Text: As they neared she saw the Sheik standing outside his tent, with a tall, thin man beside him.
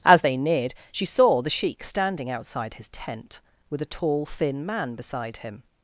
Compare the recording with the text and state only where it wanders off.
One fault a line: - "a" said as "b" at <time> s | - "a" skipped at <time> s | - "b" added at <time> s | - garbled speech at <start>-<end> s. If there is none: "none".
none